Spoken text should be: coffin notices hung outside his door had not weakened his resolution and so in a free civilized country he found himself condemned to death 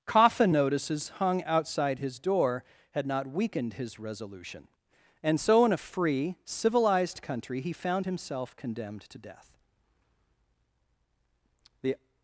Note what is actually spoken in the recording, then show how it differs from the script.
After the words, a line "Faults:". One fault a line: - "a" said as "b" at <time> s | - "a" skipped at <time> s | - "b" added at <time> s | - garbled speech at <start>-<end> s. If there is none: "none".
coffin notices hung outside his door had not weakened his resolution and so in a free civilized country he found himself condemned to death the
Faults:
- "the" added at 11.8 s